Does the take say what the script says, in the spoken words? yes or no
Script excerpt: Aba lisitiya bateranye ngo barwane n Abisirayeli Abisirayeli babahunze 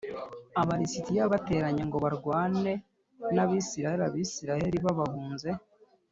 yes